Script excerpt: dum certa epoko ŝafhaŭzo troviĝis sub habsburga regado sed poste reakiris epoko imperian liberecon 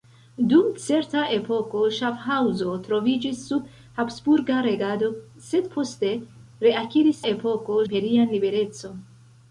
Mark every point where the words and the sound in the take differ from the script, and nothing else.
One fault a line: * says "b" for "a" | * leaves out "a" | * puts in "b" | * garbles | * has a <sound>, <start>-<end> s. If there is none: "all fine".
all fine